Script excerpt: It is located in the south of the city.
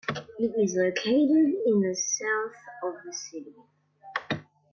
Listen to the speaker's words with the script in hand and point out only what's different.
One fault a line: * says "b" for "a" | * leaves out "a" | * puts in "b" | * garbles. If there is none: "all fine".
all fine